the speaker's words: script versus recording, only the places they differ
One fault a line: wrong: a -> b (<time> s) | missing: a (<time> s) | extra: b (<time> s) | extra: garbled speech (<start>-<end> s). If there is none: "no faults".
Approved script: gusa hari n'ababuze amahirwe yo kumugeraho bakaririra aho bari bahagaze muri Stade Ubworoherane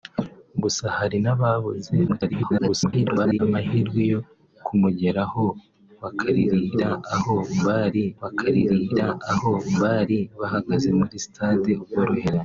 extra: garbled speech (2.1-3.4 s)
extra: bakaririra aho bari (8.2 s)